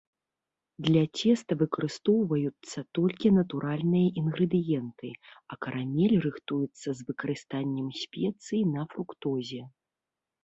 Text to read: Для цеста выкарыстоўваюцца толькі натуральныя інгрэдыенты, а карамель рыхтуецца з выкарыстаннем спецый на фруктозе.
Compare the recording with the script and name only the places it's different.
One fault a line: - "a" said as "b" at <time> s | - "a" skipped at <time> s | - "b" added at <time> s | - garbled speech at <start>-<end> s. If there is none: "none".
none